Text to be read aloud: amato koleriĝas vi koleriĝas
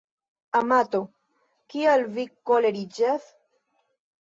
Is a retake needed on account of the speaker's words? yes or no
yes